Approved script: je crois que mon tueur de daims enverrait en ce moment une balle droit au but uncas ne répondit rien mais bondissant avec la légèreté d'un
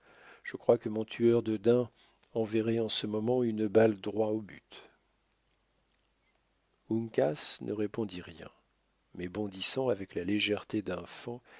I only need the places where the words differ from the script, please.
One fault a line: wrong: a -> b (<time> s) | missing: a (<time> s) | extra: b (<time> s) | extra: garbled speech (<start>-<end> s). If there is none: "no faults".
no faults